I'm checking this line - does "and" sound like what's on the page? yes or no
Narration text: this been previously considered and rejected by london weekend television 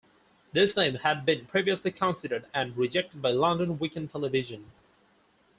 yes